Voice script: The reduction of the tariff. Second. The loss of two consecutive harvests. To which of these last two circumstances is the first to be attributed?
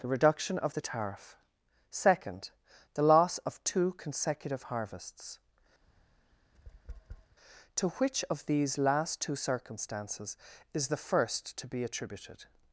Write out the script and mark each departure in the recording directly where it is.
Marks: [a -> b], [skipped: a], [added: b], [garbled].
The reduction of the tariff. Second. The loss of two consecutive harvests. To which of these last two circumstances is the first to be attributed?